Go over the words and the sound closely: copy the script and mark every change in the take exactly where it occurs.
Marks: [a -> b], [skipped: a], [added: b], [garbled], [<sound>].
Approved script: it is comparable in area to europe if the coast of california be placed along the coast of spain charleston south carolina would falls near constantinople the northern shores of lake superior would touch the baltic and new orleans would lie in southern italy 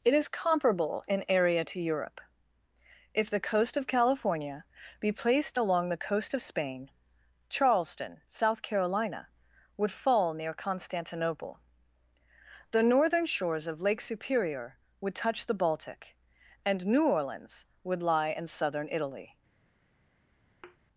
it is comparable in area to europe if the coast of california be placed along the coast of spain charleston south carolina would [falls -> fall] near constantinople the northern shores of lake superior would touch the baltic and new orleans would lie in southern italy [thud]